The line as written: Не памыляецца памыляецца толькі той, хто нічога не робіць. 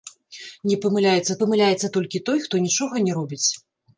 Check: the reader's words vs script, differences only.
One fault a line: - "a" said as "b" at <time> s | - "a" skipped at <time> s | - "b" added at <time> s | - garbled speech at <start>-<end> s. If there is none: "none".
none